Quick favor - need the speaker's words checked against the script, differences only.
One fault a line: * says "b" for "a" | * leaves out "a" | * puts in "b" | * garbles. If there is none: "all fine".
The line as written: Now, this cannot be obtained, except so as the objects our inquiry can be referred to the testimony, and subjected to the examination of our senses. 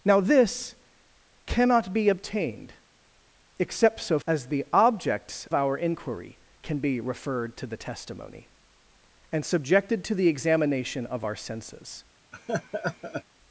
all fine